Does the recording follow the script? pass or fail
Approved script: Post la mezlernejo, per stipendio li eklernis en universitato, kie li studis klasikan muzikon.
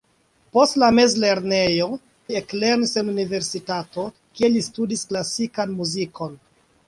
fail